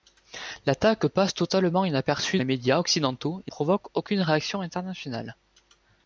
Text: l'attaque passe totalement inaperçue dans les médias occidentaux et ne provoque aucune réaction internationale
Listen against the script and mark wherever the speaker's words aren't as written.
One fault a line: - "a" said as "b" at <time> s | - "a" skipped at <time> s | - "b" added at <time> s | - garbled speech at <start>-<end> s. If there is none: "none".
- "dans" skipped at 2.4 s
- "ne" skipped at 3.5 s